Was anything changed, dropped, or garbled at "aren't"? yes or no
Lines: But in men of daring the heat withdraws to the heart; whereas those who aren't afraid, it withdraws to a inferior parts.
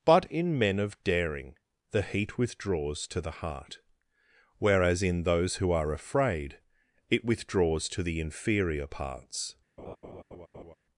yes